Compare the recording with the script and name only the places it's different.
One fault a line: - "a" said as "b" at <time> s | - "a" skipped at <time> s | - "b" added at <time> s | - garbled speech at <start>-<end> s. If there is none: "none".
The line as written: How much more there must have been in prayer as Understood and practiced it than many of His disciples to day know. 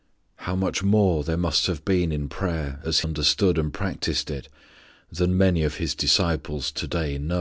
none